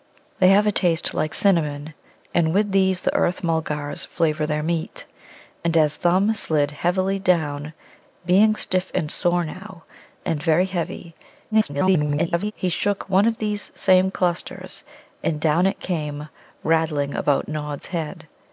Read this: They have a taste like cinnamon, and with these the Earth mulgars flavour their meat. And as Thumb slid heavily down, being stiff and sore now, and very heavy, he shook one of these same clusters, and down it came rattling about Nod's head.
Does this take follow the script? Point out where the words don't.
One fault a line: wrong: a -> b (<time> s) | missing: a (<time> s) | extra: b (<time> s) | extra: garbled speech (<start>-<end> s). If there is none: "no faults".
extra: garbled speech (11.5-12.5 s)